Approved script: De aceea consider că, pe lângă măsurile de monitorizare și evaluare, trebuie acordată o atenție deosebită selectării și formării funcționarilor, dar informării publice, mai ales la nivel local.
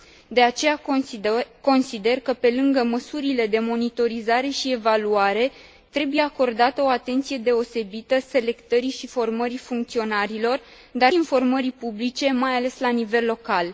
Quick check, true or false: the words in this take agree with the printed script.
true